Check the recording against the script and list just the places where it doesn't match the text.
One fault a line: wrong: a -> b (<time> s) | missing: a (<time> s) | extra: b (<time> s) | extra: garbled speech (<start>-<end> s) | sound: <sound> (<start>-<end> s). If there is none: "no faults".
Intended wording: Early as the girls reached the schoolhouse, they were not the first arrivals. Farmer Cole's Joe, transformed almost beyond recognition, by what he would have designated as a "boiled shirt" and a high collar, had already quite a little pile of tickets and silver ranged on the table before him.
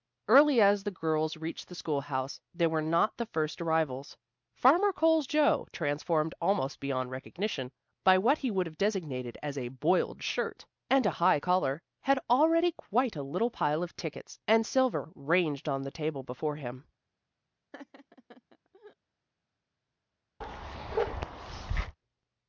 sound: laugh (17.7-19.0 s)
sound: bark (20.4-22.0 s)